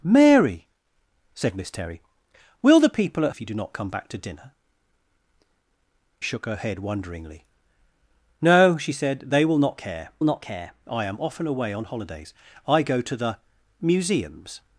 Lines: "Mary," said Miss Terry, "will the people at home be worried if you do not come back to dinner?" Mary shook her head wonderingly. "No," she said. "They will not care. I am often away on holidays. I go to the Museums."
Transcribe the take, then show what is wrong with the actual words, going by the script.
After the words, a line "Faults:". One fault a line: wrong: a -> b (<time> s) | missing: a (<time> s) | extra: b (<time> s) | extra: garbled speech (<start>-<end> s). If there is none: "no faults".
"Mary," said Miss Terry, "will the people at if you do not come back to dinner?" Shook her head wonderingly. "No," she said. "They will not care not care. I am often away on holidays. I go to the Museums."
Faults:
missing: home be worried (3.3 s)
missing: Mary (4.5 s)
extra: not care (10.2 s)